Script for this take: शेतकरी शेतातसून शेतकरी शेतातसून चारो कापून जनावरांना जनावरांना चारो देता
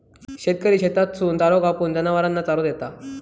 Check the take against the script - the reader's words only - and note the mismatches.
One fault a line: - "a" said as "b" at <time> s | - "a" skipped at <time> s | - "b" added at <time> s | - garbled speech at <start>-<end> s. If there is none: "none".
- "शेतकरी शेतातसून" skipped at 1.4 s
- "जनावरांना" skipped at 2.4 s